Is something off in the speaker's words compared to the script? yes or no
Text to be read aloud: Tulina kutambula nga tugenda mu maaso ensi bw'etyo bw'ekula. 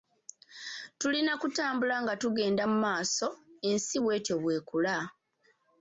no